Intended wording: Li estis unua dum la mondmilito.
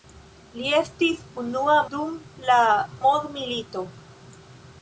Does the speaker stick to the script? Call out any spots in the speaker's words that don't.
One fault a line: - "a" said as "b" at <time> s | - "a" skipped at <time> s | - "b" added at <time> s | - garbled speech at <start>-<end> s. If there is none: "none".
none